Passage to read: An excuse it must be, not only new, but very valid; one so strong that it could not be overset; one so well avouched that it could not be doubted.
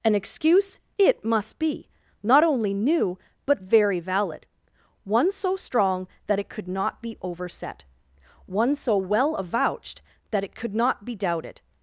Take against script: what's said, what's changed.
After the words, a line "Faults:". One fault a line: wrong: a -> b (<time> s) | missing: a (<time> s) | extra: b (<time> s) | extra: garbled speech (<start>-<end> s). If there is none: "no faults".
An excuse it must be, not only new, but very valid; one so strong that it could not be overset; one so well avouched that it could not be doubted.
Faults:
no faults